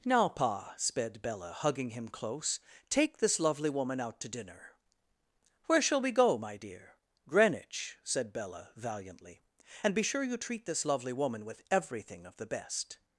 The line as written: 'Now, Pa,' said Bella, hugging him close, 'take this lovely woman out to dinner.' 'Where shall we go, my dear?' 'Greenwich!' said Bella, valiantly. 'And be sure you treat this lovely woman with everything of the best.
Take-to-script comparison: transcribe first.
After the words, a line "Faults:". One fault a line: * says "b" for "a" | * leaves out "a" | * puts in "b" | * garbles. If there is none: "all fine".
'Now, Pa,' sped Bella, hugging him close, 'take this lovely woman out to dinner.' 'Where shall we go, my dear?' 'Greenwich!' said Bella, valiantly. 'And be sure you treat this lovely woman with everything of the best.
Faults:
* says "sped" for "said"